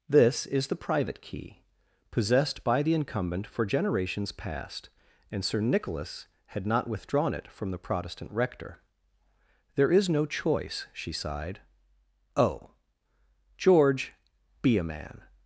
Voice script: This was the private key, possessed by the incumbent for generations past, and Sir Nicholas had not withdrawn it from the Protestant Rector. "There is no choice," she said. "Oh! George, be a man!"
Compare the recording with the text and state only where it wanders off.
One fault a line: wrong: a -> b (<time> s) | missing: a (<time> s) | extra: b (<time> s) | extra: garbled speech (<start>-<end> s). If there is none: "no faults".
wrong: was -> is (0.5 s)
wrong: said -> sighed (11.1 s)